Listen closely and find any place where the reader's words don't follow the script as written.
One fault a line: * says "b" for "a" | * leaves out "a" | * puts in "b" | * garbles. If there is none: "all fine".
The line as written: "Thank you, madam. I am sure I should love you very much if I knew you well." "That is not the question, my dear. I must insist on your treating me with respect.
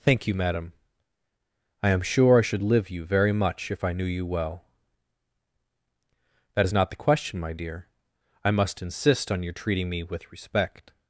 * says "live" for "love"